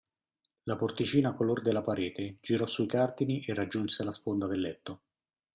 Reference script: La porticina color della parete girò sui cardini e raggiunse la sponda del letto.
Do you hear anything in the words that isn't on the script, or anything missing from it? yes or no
no